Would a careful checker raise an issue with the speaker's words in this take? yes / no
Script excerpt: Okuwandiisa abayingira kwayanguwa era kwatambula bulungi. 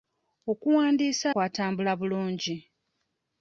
yes